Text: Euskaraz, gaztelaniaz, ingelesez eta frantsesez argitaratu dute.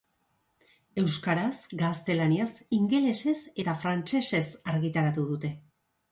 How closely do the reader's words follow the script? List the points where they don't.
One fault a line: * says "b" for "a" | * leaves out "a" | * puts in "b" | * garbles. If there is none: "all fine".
all fine